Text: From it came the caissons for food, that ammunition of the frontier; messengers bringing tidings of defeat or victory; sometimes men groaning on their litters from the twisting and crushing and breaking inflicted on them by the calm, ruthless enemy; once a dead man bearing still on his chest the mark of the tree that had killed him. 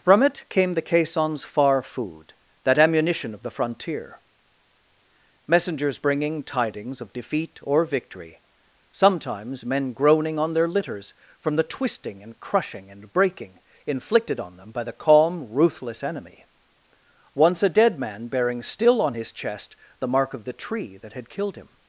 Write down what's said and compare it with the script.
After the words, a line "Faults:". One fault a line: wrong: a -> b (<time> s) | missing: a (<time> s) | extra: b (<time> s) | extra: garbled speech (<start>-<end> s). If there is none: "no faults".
From it came the caissons far food, that ammunition of the frontier; messengers bringing tidings of defeat or victory; sometimes men groaning on their litters from the twisting and crushing and breaking inflicted on them by the calm, ruthless enemy; once a dead man bearing still on his chest the mark of the tree that had killed him.
Faults:
wrong: for -> far (1.4 s)